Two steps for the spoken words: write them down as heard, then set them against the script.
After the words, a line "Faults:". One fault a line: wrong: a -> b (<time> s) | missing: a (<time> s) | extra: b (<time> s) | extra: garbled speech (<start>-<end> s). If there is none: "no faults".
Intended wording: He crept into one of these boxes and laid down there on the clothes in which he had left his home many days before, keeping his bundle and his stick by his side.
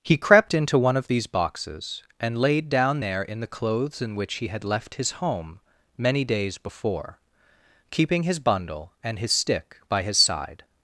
He crept into one of these boxes and laid down there in the clothes in which he had left his home many days before, keeping his bundle and his stick by his side.
Faults:
wrong: on -> in (3.2 s)